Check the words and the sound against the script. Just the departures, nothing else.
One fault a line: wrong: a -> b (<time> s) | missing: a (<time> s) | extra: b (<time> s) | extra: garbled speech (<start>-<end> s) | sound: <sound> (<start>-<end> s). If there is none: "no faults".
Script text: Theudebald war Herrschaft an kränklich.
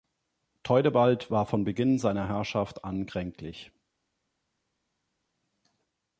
extra: von Beginn seiner (1.4 s)